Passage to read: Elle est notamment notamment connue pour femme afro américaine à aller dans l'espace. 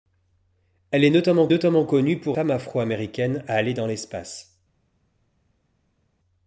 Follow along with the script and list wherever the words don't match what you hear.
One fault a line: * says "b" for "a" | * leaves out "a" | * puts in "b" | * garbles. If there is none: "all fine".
all fine